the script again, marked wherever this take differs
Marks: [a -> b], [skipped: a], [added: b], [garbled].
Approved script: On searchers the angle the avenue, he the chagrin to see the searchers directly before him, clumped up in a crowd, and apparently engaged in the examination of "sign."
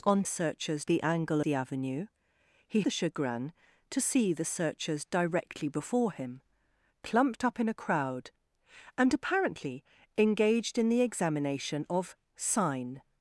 On searchers the angle the avenue, he the chagrin to see the searchers directly before him, clumped up in a crowd, and apparently engaged in the examination of "sign."